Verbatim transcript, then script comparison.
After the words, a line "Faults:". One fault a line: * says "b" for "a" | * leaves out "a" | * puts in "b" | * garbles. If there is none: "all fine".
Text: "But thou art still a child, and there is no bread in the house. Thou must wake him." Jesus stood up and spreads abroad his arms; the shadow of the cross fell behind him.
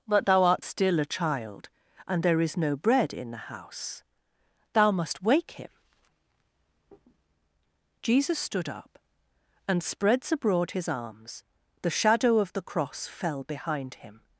"But thou art still a child, and there is no bread in the house. Thou must wake him." Jesus stood up and spreads abroad his arms; the shadow of the cross fell behind him.
Faults:
all fine